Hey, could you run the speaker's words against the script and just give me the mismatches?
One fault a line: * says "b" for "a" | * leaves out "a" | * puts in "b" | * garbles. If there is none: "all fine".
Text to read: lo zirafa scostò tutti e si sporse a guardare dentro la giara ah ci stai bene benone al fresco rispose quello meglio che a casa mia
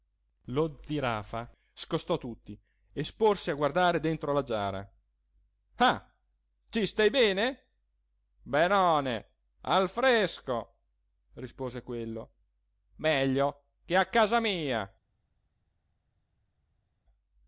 * leaves out "si"